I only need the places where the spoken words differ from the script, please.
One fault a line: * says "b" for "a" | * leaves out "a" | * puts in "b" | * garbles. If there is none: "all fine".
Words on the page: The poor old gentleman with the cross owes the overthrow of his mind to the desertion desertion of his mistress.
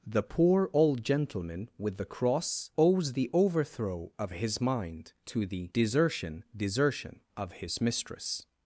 all fine